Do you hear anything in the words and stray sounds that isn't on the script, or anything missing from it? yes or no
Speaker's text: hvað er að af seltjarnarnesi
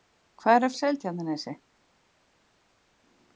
no